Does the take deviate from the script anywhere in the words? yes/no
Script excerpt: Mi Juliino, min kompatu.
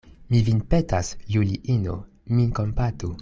yes